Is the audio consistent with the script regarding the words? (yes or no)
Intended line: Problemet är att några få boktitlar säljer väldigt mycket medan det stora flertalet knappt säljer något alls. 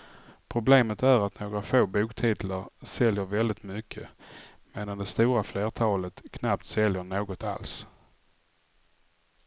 yes